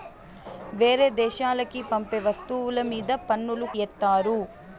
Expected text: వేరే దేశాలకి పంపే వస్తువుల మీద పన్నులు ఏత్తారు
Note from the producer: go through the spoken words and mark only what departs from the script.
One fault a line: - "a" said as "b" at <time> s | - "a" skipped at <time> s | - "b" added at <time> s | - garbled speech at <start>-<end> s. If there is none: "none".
none